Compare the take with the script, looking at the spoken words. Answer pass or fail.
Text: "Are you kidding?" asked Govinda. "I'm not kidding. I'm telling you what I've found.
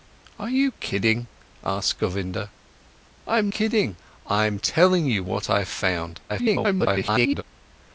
fail